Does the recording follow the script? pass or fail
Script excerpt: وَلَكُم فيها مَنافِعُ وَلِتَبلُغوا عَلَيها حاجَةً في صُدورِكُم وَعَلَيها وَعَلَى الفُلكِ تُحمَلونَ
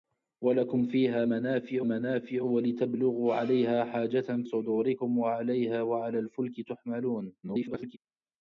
fail